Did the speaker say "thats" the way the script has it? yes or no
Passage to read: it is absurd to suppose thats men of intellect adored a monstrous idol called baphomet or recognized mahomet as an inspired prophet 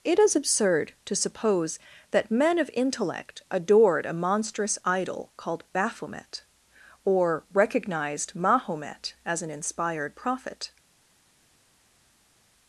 no